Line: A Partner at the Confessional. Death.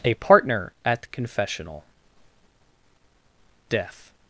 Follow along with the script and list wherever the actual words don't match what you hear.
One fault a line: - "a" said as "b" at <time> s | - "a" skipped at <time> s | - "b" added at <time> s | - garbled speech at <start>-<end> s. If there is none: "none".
none